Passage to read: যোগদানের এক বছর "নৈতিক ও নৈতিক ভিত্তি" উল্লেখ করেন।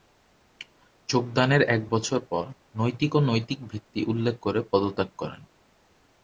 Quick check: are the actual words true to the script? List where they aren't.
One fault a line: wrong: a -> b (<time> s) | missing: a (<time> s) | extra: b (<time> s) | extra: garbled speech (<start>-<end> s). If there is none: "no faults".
extra: পর (2.3 s)
extra: করে পদত্যাগ (4.4 s)